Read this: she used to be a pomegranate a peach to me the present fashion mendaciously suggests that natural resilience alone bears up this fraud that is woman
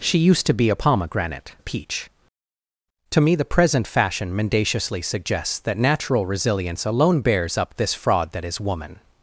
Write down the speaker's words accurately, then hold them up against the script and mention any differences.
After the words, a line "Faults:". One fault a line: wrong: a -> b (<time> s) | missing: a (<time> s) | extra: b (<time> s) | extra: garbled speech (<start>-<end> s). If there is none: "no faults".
she used to be a pomegranate a peach to me the present fashion mendaciously suggests that natural resilience alone bears up this fraud that is woman
Faults:
no faults